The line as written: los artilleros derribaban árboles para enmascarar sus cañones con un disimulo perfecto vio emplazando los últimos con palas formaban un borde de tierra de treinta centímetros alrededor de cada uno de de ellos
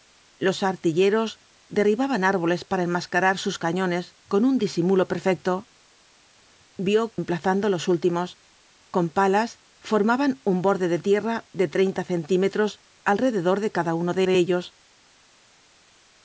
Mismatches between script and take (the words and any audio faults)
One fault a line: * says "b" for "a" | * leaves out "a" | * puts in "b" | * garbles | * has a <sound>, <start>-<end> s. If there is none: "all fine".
all fine